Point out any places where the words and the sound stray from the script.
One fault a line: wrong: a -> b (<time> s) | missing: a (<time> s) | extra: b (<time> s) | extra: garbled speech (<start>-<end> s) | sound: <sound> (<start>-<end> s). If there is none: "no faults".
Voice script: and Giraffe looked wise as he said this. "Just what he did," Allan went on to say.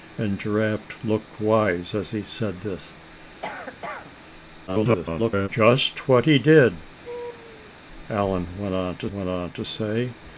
sound: cough (3.4-4.1 s)
extra: garbled speech (4.7-5.5 s)
sound: laugh (7.0-7.7 s)
extra: went on to (9.1 s)